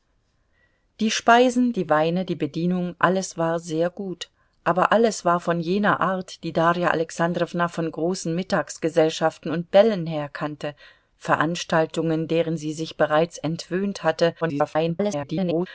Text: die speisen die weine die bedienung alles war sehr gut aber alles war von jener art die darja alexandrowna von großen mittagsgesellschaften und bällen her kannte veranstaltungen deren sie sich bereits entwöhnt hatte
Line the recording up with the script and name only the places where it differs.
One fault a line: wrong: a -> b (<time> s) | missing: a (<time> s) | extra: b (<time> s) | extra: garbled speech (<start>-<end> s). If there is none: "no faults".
extra: garbled speech (14.4-15.7 s)